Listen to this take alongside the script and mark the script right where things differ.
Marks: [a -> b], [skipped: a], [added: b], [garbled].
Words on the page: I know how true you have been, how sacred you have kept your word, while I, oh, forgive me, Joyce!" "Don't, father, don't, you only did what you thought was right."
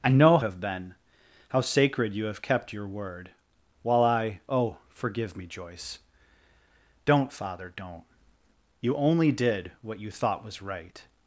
I know [skipped: how true you] have been, how sacred you have kept your word, while I, oh, forgive me, Joyce!" "Don't, father, don't, you only did what you thought was right."